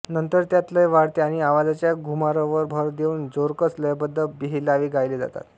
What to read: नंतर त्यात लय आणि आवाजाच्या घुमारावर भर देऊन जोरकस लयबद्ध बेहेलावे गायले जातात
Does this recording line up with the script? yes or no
no